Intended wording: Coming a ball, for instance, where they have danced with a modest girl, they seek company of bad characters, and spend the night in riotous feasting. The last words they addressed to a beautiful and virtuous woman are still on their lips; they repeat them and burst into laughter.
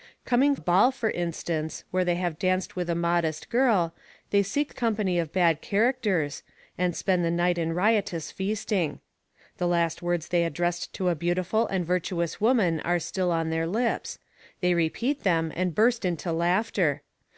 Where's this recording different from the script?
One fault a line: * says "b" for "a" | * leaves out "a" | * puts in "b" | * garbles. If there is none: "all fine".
all fine